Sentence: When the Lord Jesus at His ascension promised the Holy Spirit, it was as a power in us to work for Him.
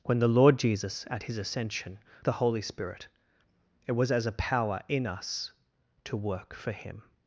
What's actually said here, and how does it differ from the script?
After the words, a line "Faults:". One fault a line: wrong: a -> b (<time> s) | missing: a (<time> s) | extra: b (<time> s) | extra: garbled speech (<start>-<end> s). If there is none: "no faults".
When the Lord Jesus at His ascension the Holy Spirit, it was as a power in us to work for Him.
Faults:
missing: promised (2.0 s)